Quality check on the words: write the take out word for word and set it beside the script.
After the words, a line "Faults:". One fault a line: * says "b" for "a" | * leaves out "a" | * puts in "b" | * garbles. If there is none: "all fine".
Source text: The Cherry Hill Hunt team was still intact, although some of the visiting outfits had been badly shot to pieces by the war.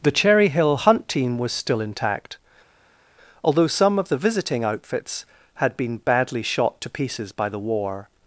The Cherry Hill Hunt team was still intact, although some of the visiting outfits had been badly shot to pieces by the war.
Faults:
all fine